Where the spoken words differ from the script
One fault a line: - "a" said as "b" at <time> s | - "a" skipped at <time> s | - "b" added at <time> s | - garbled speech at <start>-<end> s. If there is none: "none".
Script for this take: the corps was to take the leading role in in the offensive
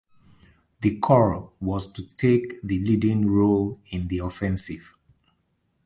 - "in" skipped at 4.1 s